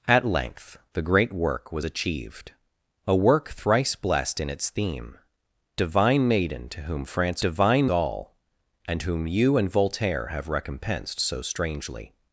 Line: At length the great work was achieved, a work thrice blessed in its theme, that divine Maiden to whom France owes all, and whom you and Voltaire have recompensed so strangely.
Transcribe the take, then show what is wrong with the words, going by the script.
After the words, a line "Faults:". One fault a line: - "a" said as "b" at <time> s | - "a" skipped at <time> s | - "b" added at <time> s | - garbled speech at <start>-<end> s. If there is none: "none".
At length the great work was achieved, a work thrice blessed in its theme, divine Maiden to whom France divine all, and whom you and Voltaire have recompensed so strangely.
Faults:
- "that" skipped at 5.2 s
- "owes" said as "divine" at 7.4 s